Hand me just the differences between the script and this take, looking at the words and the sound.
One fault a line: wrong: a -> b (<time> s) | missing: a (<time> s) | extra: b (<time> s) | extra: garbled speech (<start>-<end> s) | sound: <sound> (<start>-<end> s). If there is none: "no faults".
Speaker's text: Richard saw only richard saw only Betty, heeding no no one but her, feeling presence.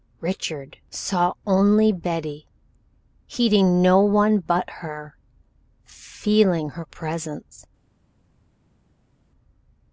missing: richard saw only (1.9 s)
missing: no (4.0 s)
extra: her (6.7 s)